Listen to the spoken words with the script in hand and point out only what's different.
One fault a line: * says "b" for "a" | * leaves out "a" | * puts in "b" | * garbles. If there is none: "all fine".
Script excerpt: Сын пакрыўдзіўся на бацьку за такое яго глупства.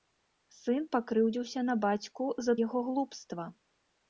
* leaves out "такое"